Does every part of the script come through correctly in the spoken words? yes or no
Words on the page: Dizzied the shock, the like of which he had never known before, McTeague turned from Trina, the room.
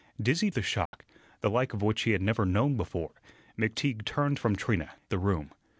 yes